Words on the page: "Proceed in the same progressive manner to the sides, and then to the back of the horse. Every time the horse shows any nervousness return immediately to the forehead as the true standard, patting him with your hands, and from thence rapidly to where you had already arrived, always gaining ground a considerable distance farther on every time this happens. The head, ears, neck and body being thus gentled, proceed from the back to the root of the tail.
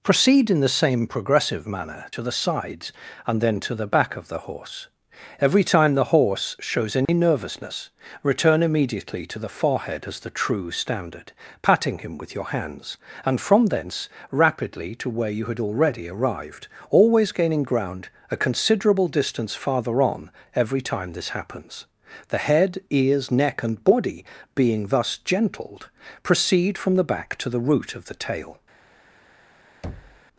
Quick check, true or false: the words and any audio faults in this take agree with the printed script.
false